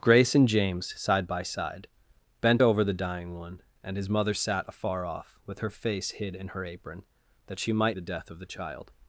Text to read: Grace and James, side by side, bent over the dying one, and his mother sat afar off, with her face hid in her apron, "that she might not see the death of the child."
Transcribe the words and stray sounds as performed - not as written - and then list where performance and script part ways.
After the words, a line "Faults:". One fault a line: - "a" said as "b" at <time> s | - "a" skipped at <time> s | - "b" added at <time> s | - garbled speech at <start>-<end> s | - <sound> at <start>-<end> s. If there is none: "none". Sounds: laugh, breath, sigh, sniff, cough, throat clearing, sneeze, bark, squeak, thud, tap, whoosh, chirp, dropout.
Grace and James, side by side, bent over the dying one, and his mother sat afar off, with her face hid in her apron, "that she might the death of the child."
Faults:
- "not see" skipped at 8.0 s